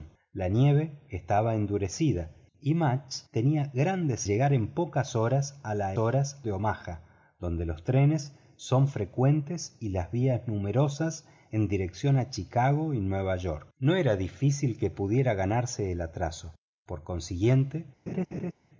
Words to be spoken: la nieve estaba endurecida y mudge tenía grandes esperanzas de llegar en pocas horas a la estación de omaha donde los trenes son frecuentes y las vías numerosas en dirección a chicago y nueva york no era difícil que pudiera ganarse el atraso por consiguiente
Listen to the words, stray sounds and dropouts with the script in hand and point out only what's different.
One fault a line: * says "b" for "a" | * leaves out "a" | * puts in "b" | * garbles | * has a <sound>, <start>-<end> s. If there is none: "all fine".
* leaves out "esperanzas de"
* says "horas" for "estación"
* has a laugh, 18.1-18.5 s